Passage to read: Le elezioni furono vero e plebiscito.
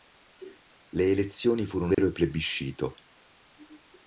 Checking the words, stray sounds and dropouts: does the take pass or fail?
fail